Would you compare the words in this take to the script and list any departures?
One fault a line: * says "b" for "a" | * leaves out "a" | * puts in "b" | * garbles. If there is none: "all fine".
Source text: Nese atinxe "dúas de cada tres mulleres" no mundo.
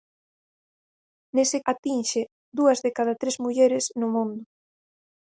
all fine